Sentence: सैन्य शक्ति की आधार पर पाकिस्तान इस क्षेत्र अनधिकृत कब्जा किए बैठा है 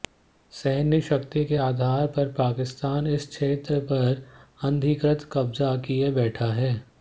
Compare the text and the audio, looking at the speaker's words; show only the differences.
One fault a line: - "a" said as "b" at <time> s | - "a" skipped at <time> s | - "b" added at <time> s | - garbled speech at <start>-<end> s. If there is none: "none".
- "की" said as "के" at 1.4 s
- "पर" added at 3.9 s